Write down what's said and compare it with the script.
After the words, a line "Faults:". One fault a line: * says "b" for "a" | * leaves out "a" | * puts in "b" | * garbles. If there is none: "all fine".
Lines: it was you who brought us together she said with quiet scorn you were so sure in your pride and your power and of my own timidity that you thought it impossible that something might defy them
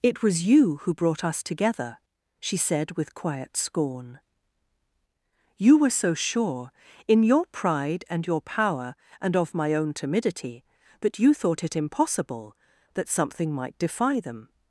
it was you who brought us together she said with quiet scorn you were so sure in your pride and your power and of my own timidity that you thought it impossible that something might defy them
Faults:
all fine